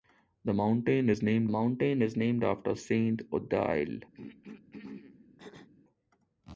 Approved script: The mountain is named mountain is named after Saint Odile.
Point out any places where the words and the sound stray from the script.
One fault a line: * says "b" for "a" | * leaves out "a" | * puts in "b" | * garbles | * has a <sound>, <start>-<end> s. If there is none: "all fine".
* has a throat clearing, 4.1-5.7 s